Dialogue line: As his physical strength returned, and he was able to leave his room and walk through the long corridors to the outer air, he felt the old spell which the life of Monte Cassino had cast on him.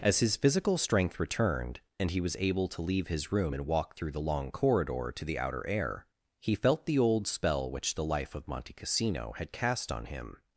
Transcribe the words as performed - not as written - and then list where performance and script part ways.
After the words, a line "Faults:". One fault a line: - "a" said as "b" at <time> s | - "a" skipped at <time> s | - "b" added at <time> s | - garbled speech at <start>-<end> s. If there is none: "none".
As his physical strength returned, and he was able to leave his room and walk through the long corridor to the outer air, he felt the old spell which the life of Monte Cassino had cast on him.
Faults:
- "corridors" said as "corridor" at 4.5 s